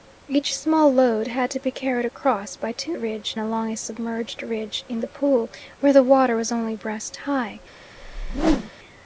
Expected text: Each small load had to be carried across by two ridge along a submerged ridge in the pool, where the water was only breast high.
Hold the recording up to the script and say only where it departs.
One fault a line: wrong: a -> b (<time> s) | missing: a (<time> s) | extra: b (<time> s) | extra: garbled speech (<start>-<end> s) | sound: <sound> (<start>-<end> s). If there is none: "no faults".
sound: whoosh (8.0-8.7 s)